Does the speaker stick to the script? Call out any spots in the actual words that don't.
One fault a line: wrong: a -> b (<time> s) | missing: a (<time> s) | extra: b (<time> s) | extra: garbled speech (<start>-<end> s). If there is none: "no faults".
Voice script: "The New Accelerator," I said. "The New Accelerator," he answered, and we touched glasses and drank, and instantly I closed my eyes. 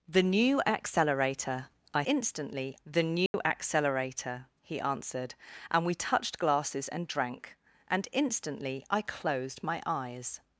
wrong: said -> instantly (2.0 s)